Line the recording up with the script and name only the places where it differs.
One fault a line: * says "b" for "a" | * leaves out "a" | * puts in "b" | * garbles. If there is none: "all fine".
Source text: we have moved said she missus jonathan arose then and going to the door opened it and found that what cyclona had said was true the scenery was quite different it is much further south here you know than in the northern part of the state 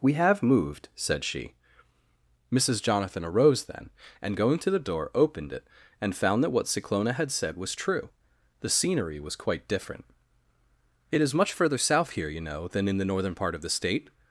all fine